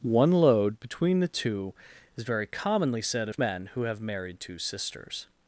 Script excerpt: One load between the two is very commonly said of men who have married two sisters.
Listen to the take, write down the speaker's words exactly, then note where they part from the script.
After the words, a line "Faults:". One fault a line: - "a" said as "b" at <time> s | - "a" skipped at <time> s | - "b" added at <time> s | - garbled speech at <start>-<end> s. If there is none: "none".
One load between the two is very commonly said of men who have married two sisters.
Faults:
none